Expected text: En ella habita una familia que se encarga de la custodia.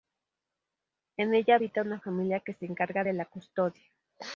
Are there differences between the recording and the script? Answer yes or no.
no